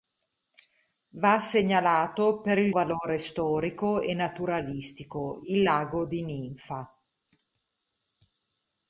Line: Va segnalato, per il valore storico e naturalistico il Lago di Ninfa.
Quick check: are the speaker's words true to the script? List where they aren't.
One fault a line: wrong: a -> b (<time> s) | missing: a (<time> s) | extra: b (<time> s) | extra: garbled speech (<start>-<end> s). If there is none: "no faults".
no faults